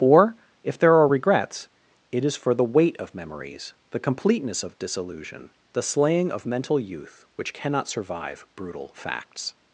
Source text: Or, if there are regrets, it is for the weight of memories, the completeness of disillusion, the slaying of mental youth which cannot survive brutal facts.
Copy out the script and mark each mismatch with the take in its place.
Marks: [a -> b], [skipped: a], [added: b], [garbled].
Or, if there are regrets, it is for the weight of memories, the completeness of disillusion, the slaying of mental youth which cannot survive brutal facts.